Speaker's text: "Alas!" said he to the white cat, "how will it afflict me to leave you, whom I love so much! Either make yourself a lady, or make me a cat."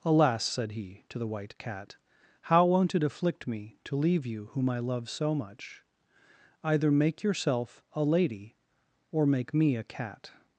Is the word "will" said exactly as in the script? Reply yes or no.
no